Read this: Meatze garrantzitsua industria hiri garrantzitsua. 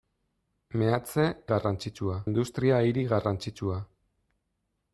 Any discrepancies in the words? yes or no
no